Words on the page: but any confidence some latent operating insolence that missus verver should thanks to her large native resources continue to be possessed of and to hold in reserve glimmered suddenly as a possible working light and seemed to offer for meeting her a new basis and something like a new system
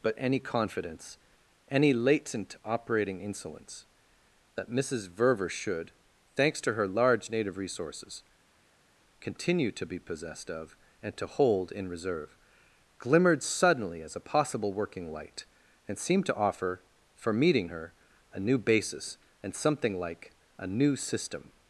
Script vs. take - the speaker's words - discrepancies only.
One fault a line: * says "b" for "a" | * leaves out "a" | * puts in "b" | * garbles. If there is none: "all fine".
* says "any" for "some"